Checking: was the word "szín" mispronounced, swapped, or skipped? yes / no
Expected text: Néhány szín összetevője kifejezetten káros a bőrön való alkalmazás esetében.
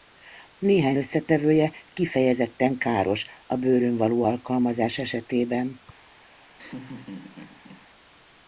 yes